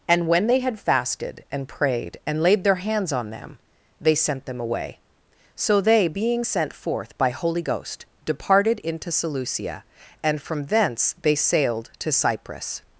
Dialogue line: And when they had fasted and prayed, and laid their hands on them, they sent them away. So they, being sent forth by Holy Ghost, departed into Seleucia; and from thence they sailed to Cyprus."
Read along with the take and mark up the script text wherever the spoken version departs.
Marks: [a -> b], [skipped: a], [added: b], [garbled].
And when they had fasted and prayed, and laid their hands on them, they sent them away. So they, being sent forth by Holy Ghost, departed into Seleucia; and from thence they sailed to Cyprus."